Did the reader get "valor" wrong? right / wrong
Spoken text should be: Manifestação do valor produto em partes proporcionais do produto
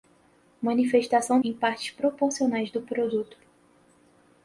wrong